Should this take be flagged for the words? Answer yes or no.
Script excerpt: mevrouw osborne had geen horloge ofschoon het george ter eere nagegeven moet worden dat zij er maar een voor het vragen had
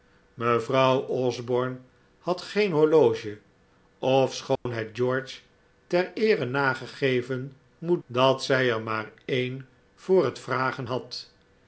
yes